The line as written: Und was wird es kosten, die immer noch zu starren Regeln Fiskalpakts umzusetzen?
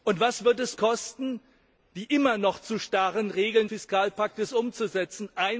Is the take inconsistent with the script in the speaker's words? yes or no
no